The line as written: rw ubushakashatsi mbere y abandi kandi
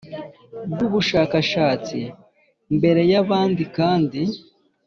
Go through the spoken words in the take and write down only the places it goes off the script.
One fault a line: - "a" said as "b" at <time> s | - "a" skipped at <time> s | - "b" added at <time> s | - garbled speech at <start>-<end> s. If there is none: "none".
none